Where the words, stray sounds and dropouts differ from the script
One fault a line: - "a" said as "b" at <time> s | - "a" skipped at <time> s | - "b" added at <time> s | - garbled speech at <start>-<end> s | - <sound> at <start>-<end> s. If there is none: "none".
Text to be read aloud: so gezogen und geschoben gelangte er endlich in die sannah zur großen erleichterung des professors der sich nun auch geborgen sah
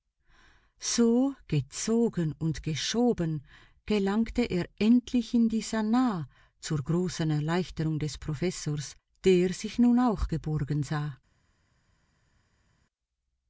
none